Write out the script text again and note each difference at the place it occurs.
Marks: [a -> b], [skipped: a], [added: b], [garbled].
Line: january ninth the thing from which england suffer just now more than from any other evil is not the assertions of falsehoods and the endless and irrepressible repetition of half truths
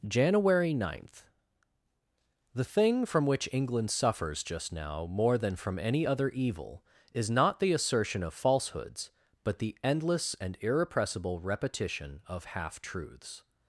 january ninth the thing from which england [suffer -> suffers] just now more than from any other evil is not the [assertions -> assertion] of falsehoods [and -> but] the endless and irrepressible repetition of half truths